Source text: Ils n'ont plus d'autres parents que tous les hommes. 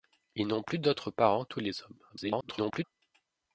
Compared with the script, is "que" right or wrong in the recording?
wrong